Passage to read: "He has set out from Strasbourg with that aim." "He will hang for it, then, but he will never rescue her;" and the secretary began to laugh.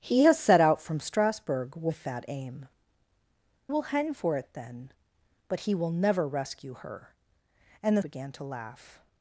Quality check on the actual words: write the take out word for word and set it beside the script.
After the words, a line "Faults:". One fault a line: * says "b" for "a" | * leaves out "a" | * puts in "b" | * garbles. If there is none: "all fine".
"He has set out from Strasbourg with that aim." "Will hang for it, then, but he will never rescue her;" and the began to laugh.
Faults:
* leaves out "He"
* leaves out "secretary"